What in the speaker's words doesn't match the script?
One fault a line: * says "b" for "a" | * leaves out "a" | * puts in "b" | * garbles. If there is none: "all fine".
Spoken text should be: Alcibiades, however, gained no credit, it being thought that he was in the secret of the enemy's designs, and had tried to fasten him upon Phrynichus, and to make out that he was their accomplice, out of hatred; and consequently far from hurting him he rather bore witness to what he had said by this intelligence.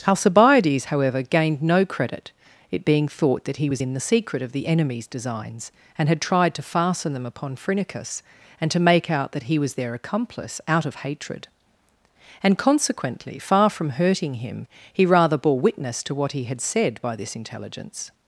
* says "them" for "him"